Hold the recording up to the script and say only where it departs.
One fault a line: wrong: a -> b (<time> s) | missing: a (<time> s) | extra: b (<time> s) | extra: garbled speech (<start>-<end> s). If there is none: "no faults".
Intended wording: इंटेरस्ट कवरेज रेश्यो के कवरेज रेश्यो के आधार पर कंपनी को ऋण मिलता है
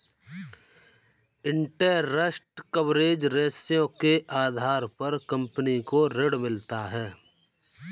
missing: कवरेज रेश्यो के (4.2 s)